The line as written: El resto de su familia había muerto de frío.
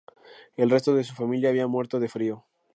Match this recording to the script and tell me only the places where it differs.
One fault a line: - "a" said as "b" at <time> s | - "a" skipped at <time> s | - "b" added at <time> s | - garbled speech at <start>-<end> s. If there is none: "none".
none